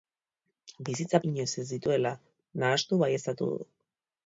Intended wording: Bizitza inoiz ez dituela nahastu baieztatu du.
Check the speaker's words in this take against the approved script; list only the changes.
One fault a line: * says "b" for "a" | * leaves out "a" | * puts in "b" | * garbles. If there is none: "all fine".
all fine